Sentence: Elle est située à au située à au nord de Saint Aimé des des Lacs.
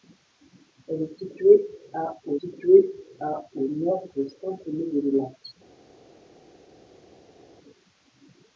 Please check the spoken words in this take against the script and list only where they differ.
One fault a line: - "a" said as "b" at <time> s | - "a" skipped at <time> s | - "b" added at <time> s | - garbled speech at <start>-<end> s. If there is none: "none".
none